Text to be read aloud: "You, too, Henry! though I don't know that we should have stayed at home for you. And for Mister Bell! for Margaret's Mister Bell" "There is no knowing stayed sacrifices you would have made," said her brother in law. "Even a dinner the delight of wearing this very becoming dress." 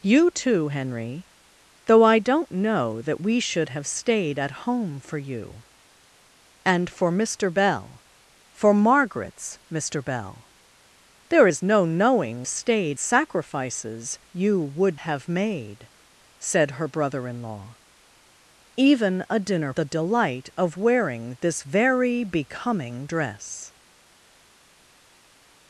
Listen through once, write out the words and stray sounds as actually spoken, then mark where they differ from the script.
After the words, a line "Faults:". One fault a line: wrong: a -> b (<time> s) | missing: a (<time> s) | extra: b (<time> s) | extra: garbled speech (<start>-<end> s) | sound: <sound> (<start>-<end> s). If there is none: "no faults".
"You, too, Henry! though I don't know that we should have stayed at home for you. And for Mister Bell! for Margaret's Mister Bell" "There is no knowing stayed sacrifices you would have made," said her brother in law. "Even a dinner the delight of wearing this very becoming dress."
Faults:
no faults